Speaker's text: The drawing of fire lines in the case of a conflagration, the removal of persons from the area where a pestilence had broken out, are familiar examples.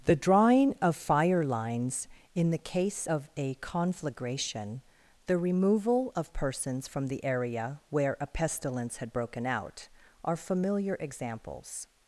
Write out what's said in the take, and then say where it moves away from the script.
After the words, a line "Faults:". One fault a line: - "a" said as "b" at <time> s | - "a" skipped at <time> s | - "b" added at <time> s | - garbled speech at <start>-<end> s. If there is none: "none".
The drawing of fire lines in the case of a conflagration, the removal of persons from the area where a pestilence had broken out, are familiar examples.
Faults:
none